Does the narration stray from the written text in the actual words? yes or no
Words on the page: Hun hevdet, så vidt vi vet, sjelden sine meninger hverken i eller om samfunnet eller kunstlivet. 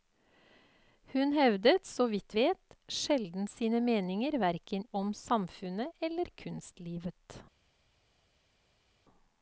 yes